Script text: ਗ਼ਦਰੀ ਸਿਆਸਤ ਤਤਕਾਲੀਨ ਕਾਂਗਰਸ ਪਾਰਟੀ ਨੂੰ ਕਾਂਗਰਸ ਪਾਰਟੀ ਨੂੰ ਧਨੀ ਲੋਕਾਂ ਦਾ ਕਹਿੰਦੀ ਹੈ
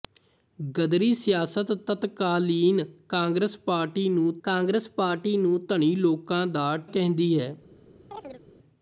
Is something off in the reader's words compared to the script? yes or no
no